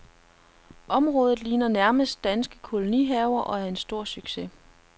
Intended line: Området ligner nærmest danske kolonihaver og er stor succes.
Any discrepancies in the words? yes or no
yes